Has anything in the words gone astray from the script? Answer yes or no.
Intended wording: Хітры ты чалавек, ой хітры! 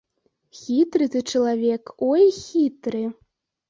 no